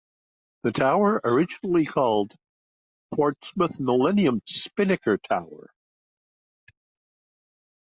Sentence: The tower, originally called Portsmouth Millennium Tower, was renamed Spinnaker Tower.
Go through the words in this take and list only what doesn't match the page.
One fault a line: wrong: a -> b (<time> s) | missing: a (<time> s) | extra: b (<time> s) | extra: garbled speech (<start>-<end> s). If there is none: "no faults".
missing: Tower was renamed (4.4 s)